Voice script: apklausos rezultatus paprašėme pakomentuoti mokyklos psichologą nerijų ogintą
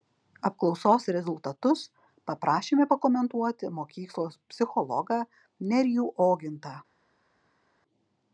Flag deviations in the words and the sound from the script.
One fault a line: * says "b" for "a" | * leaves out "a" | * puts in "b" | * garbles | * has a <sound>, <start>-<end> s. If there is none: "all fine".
all fine